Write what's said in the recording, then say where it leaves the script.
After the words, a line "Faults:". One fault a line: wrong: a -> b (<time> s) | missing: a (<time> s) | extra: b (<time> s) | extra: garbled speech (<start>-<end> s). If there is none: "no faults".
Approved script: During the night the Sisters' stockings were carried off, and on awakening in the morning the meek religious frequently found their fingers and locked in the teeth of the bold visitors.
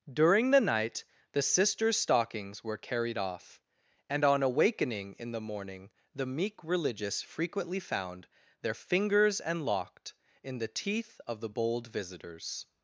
During the night the Sisters' stockings were carried off, and on awakening in the morning the meek religious frequently found their fingers and locked in the teeth of the bold visitors.
Faults:
no faults